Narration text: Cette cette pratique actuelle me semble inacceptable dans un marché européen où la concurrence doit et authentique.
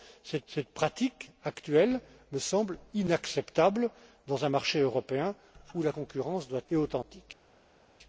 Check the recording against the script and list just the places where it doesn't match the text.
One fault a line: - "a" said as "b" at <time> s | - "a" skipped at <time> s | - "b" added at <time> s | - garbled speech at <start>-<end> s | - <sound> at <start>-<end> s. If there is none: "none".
none